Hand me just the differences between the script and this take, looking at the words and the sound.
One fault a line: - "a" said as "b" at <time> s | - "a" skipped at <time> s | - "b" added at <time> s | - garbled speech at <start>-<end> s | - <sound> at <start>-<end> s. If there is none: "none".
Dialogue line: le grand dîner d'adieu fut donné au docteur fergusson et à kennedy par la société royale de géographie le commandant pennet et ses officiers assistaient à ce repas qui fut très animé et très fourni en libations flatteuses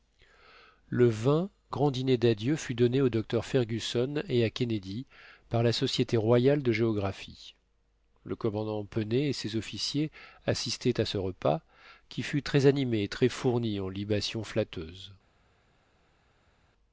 none